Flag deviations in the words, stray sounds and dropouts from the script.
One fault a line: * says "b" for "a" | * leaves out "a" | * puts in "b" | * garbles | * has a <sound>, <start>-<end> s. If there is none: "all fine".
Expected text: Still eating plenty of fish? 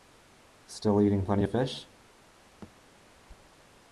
* has a thud, 2.6-2.7 s